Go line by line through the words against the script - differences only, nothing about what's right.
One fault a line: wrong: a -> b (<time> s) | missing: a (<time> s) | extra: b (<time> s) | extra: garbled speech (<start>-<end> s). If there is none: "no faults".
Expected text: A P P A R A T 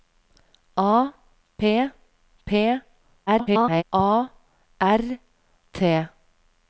extra: garbled speech (3.3-3.8 s)
missing: A (5.2 s)